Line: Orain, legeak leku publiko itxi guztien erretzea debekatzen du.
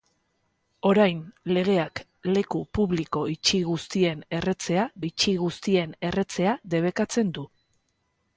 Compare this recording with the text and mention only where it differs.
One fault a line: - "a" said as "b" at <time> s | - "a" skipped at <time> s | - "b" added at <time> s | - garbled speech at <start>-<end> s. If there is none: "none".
- "itxi guztien erretzea" added at 5.1 s